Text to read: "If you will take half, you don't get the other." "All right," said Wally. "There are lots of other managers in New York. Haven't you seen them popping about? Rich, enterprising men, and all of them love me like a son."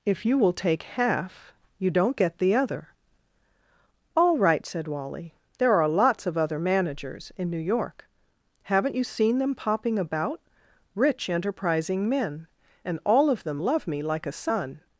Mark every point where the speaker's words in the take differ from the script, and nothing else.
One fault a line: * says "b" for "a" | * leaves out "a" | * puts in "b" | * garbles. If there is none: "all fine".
all fine